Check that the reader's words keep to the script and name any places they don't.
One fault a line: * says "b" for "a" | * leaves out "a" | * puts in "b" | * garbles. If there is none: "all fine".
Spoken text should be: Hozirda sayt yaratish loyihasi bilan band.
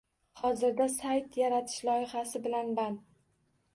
all fine